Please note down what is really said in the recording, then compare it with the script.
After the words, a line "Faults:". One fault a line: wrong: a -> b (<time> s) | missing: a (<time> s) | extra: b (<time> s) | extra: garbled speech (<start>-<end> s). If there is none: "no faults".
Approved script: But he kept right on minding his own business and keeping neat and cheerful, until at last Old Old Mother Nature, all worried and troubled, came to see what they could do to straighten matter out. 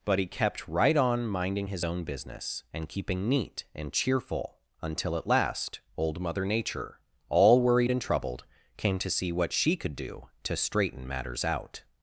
But he kept right on minding his own business and keeping neat and cheerful, until at last Old Mother Nature, all worried and troubled, came to see what she could do to straighten matters out.
Faults:
missing: Old (6.2 s)
wrong: they -> she (9.5 s)
wrong: matter -> matters (11.1 s)